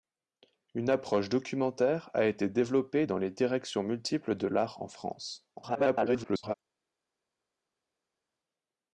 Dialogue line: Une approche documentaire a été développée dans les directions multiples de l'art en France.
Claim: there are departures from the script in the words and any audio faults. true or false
true